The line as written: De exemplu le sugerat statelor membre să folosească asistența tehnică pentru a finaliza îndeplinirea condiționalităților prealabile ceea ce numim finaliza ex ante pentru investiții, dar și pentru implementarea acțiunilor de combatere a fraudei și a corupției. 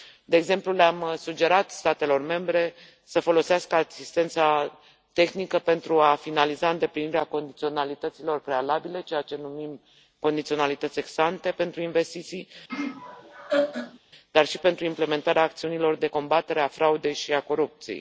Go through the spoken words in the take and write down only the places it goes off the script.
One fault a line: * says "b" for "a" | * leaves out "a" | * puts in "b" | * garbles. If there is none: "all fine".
* puts in "am"
* says "condiționalități" for "finaliza"